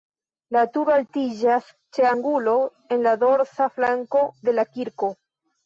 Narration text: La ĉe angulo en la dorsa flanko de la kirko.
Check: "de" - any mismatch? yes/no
no